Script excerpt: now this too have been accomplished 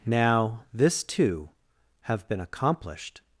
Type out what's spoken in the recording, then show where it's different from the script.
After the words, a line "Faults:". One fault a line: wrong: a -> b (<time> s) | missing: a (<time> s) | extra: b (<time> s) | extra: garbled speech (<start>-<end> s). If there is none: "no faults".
now this too have been accomplished
Faults:
no faults